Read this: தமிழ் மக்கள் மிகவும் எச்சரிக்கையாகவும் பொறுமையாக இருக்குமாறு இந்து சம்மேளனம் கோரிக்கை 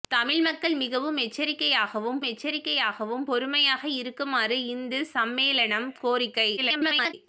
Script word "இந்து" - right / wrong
right